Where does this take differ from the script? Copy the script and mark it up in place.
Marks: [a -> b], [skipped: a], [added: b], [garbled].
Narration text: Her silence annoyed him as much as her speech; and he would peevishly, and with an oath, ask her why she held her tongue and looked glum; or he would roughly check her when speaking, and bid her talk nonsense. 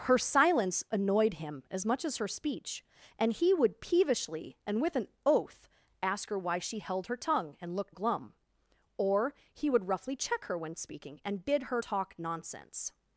Her silence annoyed him as much as her speech; and he would peevishly, and with an oath, ask her why she held her tongue and looked glum; or he would roughly check her when speaking, and bid her talk nonsense.